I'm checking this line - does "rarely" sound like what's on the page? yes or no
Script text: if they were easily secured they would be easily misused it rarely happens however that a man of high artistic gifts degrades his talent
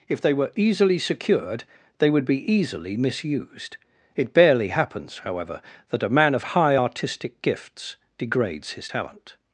no